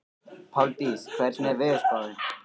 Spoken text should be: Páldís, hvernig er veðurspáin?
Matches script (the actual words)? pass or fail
pass